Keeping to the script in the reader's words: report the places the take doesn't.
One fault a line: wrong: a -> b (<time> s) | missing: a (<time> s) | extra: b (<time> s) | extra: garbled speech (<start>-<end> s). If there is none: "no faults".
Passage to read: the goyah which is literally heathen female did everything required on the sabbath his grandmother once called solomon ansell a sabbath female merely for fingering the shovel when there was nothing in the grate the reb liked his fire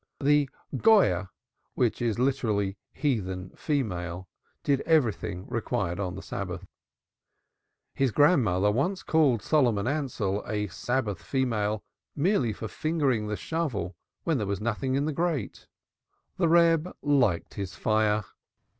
no faults